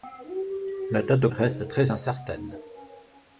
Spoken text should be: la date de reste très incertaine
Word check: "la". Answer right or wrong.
right